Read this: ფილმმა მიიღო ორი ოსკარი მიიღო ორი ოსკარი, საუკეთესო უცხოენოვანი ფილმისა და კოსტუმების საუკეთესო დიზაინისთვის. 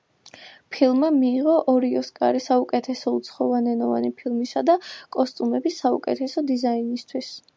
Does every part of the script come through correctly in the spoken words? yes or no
no